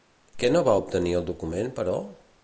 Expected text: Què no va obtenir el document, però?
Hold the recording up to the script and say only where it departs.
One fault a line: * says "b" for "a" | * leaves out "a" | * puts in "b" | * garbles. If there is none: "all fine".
all fine